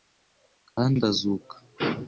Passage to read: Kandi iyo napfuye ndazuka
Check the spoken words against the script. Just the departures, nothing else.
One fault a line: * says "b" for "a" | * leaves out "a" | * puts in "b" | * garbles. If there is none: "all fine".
* leaves out "iyo napfuye"